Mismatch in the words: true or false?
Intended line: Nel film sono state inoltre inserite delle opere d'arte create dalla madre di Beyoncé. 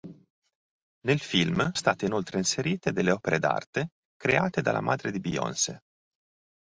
true